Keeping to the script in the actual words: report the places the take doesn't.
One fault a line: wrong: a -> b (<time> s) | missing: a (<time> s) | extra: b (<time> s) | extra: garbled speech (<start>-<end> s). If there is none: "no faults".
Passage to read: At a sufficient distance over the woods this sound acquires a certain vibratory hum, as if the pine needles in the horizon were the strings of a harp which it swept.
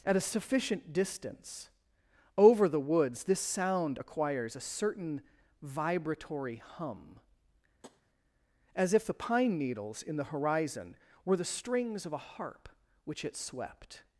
no faults